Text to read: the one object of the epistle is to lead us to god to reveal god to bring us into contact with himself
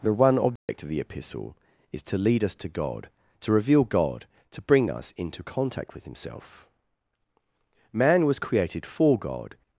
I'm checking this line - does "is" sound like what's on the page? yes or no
yes